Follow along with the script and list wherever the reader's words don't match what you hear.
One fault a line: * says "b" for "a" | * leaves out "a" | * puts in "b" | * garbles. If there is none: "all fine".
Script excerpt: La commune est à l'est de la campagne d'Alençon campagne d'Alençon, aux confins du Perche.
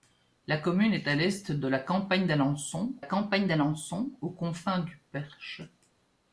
all fine